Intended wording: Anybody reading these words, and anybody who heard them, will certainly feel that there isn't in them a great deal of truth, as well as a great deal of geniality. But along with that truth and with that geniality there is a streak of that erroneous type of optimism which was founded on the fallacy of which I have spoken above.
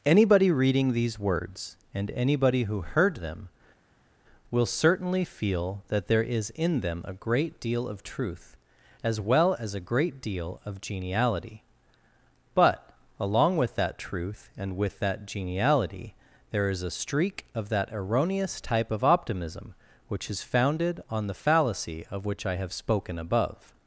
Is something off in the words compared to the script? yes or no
yes